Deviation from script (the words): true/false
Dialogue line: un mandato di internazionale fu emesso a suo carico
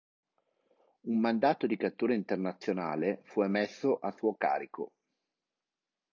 true